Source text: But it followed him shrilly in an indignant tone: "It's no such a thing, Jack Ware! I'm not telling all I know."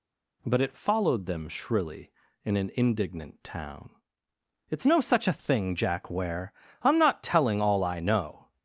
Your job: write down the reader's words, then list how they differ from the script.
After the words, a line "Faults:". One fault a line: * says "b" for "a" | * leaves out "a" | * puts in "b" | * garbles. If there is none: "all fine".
But it followed them shrilly in an indignant town: "It's no such a thing, Jack Ware! I'm not telling all I know."
Faults:
* says "them" for "him"
* says "town" for "tone"